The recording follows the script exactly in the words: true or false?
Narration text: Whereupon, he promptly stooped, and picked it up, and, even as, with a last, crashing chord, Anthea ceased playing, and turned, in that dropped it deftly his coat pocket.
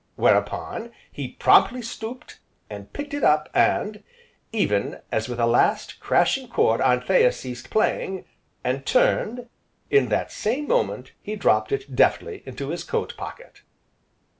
false